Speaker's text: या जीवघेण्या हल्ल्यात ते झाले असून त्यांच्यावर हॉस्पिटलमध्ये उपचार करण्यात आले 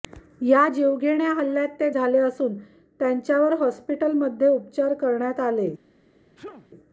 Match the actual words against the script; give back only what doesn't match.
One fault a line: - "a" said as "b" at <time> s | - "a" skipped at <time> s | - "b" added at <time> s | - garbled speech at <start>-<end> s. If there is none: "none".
none